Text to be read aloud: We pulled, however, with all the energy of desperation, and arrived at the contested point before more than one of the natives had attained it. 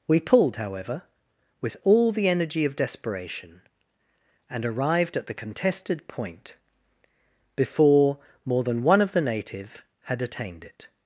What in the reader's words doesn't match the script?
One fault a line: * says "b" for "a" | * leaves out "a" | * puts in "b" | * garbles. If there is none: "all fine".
* says "native" for "natives"